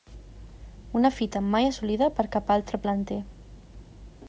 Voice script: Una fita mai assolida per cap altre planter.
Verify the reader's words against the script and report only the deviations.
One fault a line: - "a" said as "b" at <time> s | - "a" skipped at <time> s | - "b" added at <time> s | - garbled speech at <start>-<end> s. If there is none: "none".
none